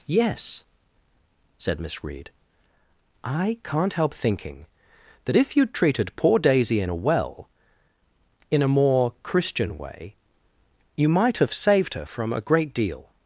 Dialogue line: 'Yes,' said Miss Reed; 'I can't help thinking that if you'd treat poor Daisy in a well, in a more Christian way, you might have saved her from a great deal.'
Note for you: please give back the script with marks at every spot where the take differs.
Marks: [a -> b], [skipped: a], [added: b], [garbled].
'Yes,' said Miss Reed; 'I can't help thinking that if you'd [treat -> treated] poor Daisy in a well, in a more Christian way, you might have saved her from a great deal.'